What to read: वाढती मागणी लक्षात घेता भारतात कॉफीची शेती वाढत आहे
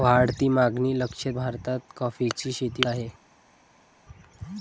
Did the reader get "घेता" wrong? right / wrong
wrong